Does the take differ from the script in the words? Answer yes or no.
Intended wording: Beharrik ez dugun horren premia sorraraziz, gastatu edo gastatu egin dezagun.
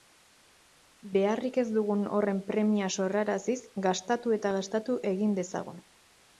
yes